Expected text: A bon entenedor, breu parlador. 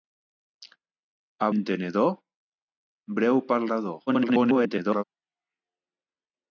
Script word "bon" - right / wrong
wrong